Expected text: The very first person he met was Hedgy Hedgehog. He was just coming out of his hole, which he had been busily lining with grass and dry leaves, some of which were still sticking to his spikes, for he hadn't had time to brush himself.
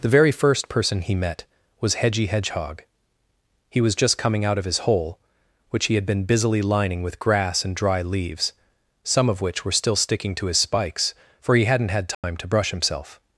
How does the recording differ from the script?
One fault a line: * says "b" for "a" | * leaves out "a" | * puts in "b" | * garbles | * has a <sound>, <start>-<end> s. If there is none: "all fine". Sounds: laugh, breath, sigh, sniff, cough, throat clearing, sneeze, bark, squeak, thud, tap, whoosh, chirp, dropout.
* has a dropout, 12.1-12.2 s